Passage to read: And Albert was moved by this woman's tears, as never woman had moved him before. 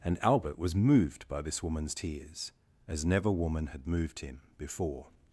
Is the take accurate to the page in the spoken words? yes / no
yes